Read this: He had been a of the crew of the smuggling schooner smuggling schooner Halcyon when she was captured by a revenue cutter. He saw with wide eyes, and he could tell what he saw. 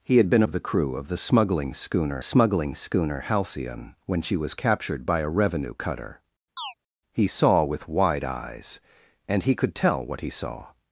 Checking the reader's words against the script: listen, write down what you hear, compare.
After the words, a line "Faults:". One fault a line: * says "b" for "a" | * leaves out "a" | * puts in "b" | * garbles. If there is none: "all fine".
He had been a of the crew of the smuggling schooner smuggling schooner Halcyon when she was captured by a revenue cutter. He saw with wide eyes, and he could tell what he saw.
Faults:
all fine